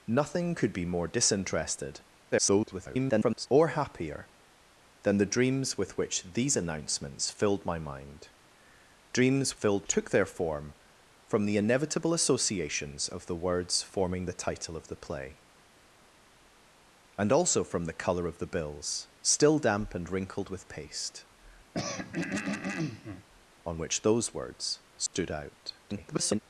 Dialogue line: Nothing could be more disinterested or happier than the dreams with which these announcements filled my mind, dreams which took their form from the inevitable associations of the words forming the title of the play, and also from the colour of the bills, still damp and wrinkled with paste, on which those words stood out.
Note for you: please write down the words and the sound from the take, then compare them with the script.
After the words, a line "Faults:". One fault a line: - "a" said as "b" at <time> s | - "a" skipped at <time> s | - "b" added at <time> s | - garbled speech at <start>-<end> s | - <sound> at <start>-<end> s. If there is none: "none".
Nothing could be more disinterested [garbled] or happier than the dreams with which these announcements filled my mind, dreams filled took their form from the inevitable associations of the words forming the title of the play, and also from the colour of the bills, still damp and wrinkled with paste, on which those words stood out. [garbled]
Faults:
- garbled speech at 2.3-3.5 s
- "which" said as "filled" at 9.5 s
- throat clearing at 21.7-23.3 s
- dropout at 25.1-25.1 s
- garbled speech at 25.8-26.4 s